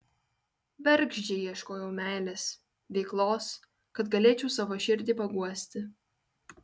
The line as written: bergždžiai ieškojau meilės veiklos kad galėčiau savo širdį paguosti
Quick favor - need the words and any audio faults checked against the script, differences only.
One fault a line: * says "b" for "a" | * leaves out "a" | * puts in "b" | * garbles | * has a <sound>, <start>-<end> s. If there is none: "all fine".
all fine